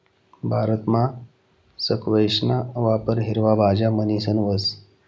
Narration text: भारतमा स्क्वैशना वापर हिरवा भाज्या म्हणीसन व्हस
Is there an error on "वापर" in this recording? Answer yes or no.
no